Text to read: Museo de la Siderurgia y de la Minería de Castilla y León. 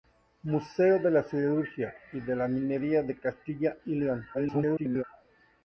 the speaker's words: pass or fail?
fail